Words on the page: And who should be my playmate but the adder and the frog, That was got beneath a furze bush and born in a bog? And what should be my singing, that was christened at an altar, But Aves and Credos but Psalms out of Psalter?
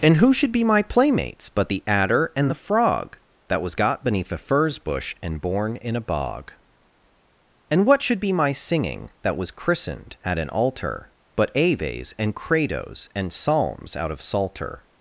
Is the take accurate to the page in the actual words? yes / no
no